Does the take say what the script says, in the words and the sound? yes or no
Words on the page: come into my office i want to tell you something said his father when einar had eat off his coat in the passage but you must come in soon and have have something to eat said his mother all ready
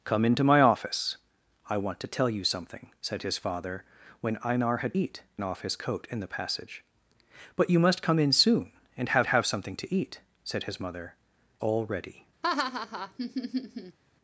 no